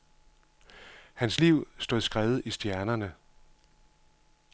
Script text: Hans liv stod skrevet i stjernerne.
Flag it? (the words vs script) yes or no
no